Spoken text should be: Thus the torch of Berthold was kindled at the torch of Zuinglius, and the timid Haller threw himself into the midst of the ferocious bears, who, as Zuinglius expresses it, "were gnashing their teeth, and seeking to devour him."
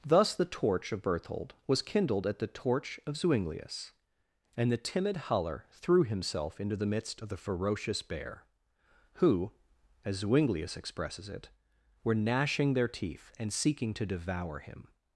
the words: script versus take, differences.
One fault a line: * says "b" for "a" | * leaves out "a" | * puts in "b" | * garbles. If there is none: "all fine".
* says "bear" for "bears"